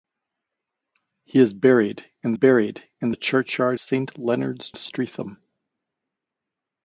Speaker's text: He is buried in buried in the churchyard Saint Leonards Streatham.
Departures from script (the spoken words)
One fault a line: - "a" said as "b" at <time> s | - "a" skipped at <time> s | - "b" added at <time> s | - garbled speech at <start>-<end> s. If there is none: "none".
none